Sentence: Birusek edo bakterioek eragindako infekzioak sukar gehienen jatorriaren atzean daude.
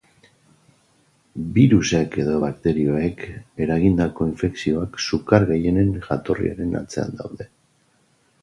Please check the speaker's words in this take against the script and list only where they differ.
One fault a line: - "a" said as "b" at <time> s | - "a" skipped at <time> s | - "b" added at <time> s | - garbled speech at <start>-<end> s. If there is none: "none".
none